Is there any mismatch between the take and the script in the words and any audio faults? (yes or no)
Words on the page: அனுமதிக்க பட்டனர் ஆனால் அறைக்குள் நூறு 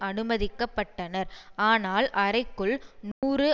yes